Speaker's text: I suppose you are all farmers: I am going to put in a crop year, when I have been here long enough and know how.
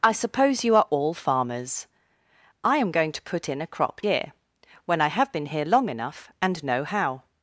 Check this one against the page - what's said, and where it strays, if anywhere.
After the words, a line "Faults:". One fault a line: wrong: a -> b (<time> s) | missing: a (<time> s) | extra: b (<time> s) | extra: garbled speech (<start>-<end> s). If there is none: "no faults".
I suppose you are all farmers: I am going to put in a crop year, when I have been here long enough and know how.
Faults:
no faults